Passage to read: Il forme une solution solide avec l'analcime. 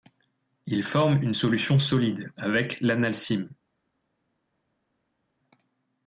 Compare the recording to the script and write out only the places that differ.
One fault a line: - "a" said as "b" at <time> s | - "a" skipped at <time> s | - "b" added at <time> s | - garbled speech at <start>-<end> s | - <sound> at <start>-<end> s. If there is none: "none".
none